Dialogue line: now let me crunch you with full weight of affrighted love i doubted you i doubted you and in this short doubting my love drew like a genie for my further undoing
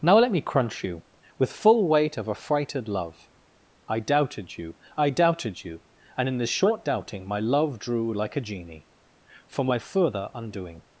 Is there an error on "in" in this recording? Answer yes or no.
no